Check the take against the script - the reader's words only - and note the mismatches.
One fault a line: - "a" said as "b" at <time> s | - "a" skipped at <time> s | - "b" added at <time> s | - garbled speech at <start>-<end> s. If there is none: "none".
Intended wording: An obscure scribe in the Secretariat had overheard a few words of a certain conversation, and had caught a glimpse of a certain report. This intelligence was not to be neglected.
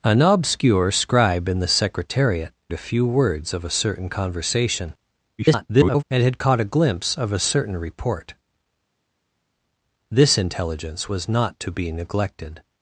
- "had overheard" skipped at 2.5 s
- garbled speech at 5.4-6.0 s